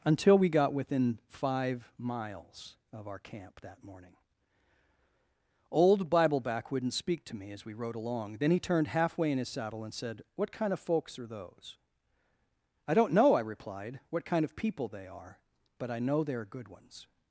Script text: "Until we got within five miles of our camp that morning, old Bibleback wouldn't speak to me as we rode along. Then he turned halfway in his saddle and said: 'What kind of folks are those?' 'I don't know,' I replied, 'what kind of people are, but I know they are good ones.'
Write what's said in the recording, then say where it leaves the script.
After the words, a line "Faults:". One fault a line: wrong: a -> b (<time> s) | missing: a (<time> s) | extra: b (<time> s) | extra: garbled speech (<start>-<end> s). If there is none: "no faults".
"Until we got within five miles of our camp that morning, old Bibleback wouldn't speak to me as we rode along. Then he turned halfway in his saddle and said: 'What kind of folks are those?' 'I don't know,' I replied, 'what kind of people they are, but I know they are good ones.'
Faults:
extra: they (14.9 s)